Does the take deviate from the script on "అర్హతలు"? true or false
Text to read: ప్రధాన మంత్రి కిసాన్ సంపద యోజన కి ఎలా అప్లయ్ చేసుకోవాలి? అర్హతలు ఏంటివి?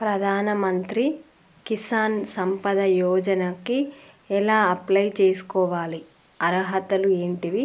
false